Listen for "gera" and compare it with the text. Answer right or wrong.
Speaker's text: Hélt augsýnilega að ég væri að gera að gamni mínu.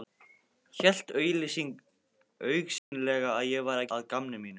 wrong